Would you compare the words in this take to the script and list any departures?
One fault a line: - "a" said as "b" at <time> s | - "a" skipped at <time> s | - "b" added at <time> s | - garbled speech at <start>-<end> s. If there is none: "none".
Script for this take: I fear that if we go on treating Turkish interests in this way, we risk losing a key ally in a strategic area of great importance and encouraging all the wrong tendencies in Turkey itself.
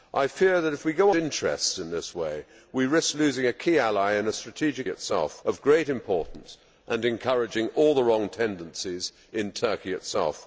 - "on treating Turkish" skipped at 1.1 s
- "area" said as "itself" at 4.9 s